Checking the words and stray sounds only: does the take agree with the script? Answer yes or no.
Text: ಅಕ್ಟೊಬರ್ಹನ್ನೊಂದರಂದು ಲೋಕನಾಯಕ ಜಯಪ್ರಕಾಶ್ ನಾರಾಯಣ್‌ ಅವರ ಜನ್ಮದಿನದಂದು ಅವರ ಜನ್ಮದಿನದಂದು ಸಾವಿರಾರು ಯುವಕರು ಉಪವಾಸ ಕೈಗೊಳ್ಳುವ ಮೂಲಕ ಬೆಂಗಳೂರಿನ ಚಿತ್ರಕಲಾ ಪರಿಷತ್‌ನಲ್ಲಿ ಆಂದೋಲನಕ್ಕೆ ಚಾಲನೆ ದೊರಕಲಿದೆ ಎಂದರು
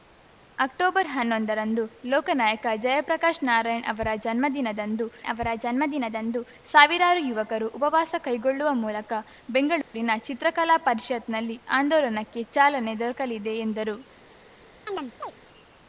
no